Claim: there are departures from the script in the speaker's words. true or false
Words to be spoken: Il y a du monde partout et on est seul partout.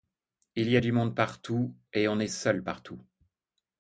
false